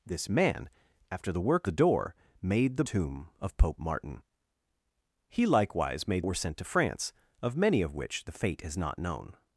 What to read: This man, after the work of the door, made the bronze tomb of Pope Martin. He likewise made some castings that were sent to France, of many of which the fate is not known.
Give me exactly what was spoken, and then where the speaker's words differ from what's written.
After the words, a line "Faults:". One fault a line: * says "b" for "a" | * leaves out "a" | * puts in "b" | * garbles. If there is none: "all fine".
This man, after the work the door, made the tomb of Pope Martin. He likewise made were sent to France, of many of which the fate is not known.
Faults:
* leaves out "of"
* leaves out "bronze"
* leaves out "some castings that"